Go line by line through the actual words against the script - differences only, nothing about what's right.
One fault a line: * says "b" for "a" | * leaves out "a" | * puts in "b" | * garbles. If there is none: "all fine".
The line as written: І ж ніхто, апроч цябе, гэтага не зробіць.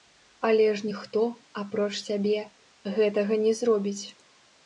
* says "Але" for "І"